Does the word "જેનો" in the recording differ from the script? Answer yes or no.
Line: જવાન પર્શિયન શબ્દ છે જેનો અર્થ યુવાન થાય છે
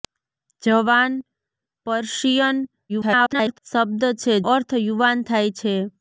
yes